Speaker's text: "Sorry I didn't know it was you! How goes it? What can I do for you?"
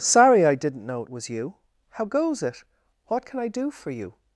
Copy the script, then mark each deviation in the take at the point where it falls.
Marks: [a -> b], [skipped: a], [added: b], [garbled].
"Sorry I didn't know it was you! How goes it? What can I do for you?"